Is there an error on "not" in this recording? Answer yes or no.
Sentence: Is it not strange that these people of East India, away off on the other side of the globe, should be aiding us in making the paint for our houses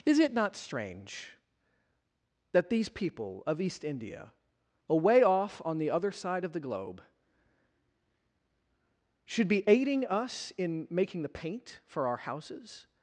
no